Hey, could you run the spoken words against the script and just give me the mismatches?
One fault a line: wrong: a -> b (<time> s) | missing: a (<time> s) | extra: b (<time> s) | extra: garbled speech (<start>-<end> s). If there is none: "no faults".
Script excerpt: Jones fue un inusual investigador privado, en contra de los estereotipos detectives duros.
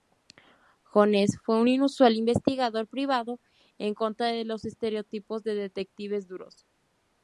extra: de (5.4 s)